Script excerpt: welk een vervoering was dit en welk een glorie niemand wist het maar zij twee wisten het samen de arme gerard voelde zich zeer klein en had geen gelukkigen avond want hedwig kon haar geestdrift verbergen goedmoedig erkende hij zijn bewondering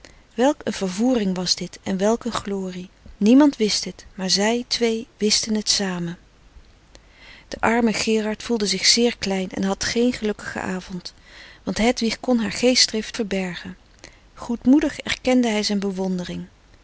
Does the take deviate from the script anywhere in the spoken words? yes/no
no